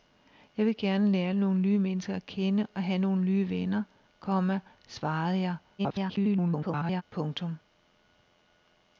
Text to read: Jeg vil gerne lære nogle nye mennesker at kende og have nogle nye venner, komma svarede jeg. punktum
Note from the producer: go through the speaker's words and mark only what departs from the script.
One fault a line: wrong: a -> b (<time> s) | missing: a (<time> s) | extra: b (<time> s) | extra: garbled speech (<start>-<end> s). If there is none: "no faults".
extra: garbled speech (5.8-7.0 s)